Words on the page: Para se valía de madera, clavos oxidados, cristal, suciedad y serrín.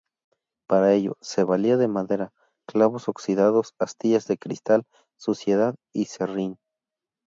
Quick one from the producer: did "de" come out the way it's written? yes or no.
yes